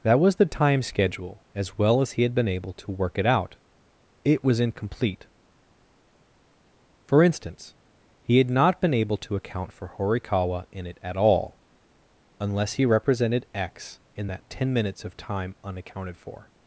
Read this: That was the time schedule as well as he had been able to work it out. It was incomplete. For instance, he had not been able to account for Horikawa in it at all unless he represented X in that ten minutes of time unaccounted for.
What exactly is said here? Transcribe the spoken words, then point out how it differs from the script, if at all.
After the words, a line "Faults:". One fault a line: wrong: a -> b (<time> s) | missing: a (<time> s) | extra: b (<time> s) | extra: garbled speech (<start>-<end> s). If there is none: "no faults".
That was the time schedule as well as he had been able to work it out. It was incomplete. For instance, he had not been able to account for Horikawa in it at all unless he represented X in that ten minutes of time unaccounted for.
Faults:
no faults